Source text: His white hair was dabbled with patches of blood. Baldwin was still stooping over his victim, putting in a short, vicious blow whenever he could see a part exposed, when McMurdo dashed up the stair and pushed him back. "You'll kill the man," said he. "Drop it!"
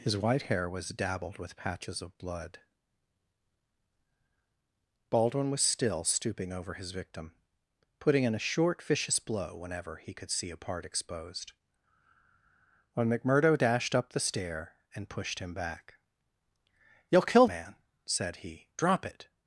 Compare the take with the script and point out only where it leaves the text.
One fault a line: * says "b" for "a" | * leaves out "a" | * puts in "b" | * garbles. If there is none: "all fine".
* leaves out "the"